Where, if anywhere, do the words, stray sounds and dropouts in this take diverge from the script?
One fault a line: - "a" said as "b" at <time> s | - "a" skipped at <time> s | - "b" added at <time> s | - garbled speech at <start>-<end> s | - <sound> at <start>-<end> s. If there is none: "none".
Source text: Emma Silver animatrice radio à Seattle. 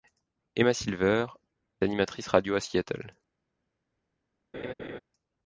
- laugh at 4.5-5.0 s